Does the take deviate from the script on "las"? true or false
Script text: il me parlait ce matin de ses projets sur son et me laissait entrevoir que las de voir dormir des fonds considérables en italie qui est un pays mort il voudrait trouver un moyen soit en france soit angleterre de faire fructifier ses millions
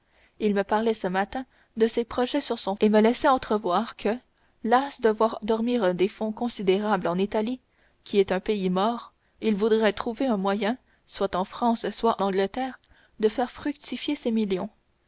false